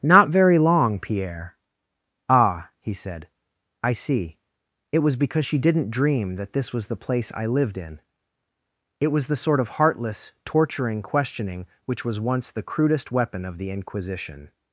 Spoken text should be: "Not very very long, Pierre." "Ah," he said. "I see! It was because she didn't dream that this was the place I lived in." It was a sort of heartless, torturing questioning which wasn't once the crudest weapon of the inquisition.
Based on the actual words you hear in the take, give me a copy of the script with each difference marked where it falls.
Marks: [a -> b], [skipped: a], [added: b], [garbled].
"Not very [skipped: very] long, Pierre." "Ah," he said. "I see! It was because she didn't dream that this was the place I lived in." It was [a -> the] sort of heartless, torturing questioning which [wasn't -> was] once the crudest weapon of the inquisition.